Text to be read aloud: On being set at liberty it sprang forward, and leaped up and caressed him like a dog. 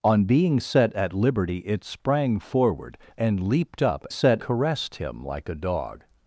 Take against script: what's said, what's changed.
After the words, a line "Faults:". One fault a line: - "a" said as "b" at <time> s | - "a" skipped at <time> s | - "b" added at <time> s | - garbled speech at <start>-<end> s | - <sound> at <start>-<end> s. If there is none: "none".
On being set at liberty it sprang forward, and leaped up set caressed him like a dog.
Faults:
- "and" said as "set" at 4.1 s